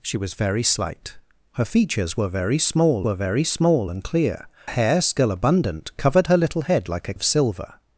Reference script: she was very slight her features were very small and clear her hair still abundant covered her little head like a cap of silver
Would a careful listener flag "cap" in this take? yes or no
yes